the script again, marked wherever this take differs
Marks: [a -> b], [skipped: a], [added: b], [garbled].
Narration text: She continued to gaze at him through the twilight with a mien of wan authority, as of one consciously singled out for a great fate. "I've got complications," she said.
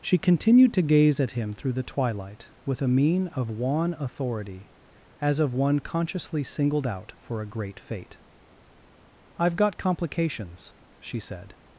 She continued to gaze at him through the twilight with a mien of wan authority, as of one consciously singled out for a great fate. "I've got complications," she said.